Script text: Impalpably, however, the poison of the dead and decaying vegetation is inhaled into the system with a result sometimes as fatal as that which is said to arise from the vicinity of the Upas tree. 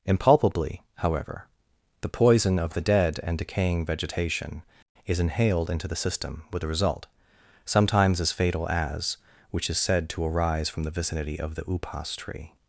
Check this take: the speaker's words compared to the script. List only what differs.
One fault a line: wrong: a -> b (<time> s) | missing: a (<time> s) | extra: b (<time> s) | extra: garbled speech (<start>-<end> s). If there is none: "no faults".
missing: that (9.2 s)